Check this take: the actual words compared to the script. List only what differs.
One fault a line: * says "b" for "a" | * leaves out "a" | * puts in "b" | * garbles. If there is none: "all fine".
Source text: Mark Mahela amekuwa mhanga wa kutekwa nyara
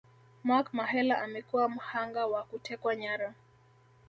all fine